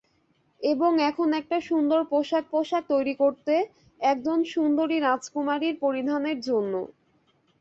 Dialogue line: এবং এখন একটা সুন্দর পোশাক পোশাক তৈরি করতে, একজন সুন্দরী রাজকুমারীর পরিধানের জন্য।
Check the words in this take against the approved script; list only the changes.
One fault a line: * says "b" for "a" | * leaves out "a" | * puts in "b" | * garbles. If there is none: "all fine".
all fine